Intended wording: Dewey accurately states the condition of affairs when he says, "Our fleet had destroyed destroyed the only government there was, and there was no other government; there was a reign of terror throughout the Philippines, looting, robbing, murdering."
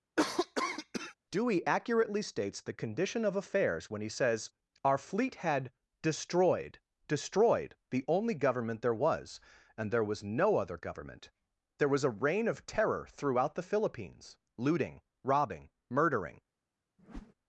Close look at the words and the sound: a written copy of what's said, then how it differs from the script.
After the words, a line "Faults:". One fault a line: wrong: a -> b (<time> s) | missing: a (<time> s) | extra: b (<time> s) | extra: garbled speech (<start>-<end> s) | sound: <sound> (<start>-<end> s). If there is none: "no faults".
Dewey accurately states the condition of affairs when he says, "Our fleet had destroyed destroyed the only government there was, and there was no other government; there was a reign of terror throughout the Philippines, looting, robbing, murdering."
Faults:
sound: cough (0.2-1.1 s)
sound: whoosh (17.0-17.3 s)